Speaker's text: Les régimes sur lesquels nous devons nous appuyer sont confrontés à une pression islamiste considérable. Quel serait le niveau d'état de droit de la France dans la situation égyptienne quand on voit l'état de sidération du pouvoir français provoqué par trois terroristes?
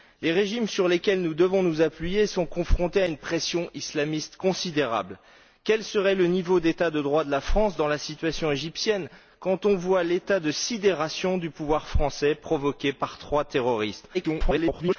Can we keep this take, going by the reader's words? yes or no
no